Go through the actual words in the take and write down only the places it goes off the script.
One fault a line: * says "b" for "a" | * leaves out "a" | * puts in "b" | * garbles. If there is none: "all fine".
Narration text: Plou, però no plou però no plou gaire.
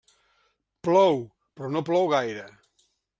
* leaves out "però no plou"